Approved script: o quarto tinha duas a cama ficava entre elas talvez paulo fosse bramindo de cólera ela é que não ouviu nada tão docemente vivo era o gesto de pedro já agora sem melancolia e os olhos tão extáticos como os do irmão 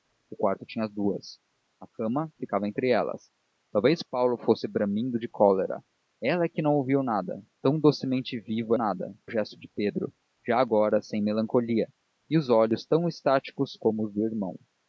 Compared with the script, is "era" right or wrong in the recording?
wrong